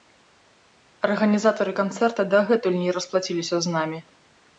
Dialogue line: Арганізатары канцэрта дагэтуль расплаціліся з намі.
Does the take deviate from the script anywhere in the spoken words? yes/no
yes